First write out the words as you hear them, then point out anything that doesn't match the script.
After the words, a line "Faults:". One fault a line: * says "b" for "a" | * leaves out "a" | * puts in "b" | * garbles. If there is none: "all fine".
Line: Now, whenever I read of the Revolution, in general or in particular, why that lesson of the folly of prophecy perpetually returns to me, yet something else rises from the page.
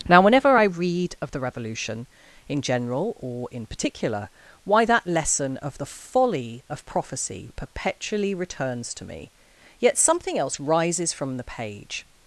Now, whenever I read of the Revolution, in general or in particular, why that lesson of the folly of prophecy perpetually returns to me, yet something else rises from the page.
Faults:
all fine